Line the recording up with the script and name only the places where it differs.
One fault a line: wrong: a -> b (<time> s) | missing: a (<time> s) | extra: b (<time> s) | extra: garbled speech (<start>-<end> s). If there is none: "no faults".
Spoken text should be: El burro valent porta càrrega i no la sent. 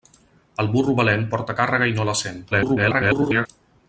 extra: garbled speech (2.5-3.5 s)